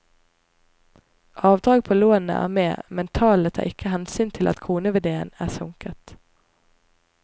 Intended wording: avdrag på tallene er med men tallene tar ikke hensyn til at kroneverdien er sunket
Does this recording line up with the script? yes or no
no